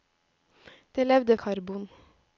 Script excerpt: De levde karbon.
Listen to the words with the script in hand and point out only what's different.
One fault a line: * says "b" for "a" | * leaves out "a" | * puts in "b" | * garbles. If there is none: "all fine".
all fine